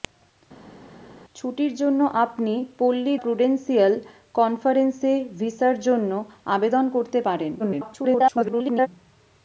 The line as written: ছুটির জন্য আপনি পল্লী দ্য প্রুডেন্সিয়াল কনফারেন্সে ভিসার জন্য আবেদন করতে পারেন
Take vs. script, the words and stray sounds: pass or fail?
fail